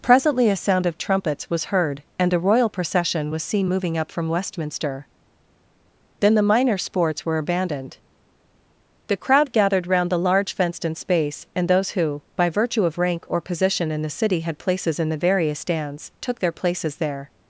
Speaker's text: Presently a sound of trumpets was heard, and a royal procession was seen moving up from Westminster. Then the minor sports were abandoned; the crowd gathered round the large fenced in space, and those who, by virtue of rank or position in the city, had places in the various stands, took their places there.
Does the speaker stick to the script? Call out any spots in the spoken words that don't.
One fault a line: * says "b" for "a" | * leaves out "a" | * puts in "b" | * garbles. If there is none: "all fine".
all fine